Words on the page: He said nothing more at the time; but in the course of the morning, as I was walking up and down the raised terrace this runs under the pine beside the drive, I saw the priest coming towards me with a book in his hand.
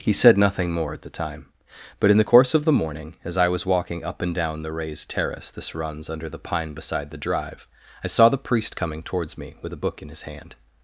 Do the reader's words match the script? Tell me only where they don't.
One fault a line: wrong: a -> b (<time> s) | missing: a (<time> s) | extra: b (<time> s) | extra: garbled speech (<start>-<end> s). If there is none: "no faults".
no faults